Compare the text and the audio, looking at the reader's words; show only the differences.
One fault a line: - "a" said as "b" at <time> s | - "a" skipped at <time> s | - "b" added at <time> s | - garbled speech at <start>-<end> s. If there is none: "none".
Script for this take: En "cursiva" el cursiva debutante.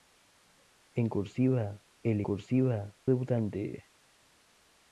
none